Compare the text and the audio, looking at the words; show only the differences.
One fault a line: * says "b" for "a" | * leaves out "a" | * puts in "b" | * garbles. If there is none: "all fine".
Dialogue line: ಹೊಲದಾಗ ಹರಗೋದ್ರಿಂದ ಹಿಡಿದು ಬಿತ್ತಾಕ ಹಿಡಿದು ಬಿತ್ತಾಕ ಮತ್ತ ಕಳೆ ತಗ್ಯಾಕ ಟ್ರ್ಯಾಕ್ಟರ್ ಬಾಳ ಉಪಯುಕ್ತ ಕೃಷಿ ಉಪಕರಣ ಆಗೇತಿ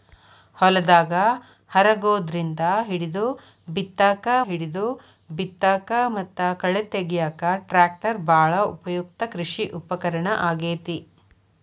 all fine